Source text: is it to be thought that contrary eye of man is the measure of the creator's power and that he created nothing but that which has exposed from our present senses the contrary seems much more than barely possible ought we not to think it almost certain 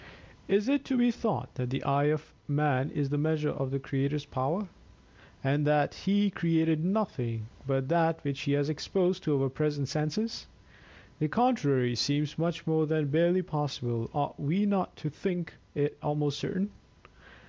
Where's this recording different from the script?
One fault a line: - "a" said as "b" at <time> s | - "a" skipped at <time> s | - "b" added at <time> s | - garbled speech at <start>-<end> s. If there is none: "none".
- "contrary" said as "the" at 1.7 s
- "he" added at 8.4 s
- "from" said as "to" at 9.2 s